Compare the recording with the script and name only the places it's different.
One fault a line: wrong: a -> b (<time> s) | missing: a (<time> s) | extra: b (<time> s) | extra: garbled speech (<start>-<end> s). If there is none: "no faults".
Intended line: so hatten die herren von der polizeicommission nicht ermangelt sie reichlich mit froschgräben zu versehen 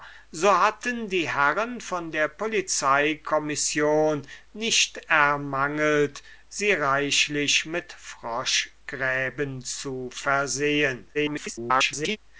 extra: garbled speech (11.1-12.2 s)